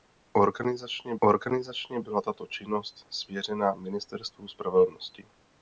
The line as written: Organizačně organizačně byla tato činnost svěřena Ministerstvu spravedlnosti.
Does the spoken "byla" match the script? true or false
true